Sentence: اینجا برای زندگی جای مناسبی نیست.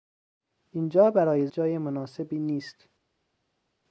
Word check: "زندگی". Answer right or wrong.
wrong